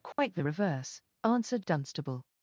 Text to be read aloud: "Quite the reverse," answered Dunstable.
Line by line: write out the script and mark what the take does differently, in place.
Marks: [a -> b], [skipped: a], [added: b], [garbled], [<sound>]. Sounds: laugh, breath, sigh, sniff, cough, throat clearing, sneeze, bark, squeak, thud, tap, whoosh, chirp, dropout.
"Quite [dropout] the reverse," answered Dunstable.